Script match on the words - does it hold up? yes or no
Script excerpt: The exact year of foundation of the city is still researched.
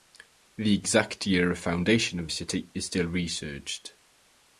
no